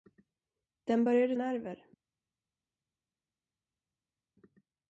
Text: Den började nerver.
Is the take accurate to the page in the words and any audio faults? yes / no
yes